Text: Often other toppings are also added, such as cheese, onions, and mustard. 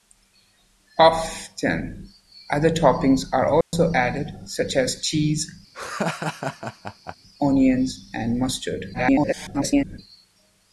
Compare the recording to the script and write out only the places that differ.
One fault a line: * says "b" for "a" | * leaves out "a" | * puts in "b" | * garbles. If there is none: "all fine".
* garbles